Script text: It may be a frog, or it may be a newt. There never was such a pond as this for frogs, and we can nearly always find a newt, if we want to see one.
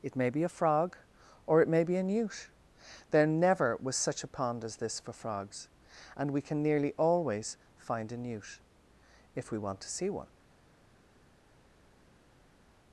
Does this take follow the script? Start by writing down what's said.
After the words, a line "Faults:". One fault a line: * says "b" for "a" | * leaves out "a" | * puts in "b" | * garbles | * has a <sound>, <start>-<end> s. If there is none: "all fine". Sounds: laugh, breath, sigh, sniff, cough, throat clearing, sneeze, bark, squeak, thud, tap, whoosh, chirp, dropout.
It may be a frog, or it may be a newt. There never was such a pond as this for frogs, and we can nearly always find a newt, if we want to see one.
Faults:
all fine